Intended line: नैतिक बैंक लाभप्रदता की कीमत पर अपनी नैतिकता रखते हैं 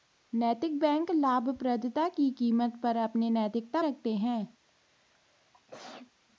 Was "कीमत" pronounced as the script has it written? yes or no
yes